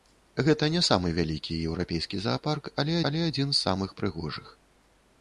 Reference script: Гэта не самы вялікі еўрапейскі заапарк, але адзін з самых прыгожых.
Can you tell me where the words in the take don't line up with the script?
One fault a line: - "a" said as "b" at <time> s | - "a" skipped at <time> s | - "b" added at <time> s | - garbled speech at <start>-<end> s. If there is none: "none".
- "але" added at 3.1 s